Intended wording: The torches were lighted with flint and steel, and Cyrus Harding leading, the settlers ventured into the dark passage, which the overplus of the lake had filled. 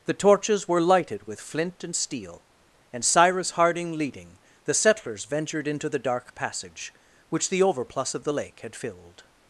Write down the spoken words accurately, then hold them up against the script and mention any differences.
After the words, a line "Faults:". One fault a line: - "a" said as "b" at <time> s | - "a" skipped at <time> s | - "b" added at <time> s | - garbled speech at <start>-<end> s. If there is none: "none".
The torches were lighted with flint and steel, and Cyrus Harding leading, the settlers ventured into the dark passage, which the overplus of the lake had filled.
Faults:
none